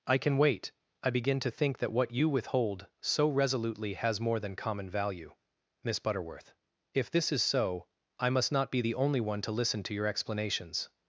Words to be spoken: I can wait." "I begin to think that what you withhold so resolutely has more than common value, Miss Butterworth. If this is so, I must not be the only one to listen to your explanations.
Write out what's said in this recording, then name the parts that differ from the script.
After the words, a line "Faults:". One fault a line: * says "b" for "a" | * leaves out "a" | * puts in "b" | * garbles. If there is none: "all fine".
I can wait." "I begin to think that what you withhold so resolutely has more than common value, Miss Butterworth. If this is so, I must not be the only one to listen to your explanations.
Faults:
all fine